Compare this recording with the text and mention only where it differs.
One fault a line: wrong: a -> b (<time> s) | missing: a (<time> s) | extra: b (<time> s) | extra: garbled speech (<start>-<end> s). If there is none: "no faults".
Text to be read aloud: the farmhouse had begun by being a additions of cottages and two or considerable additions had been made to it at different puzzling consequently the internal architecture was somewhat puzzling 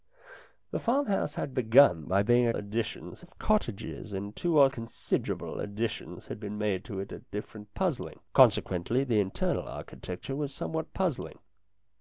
no faults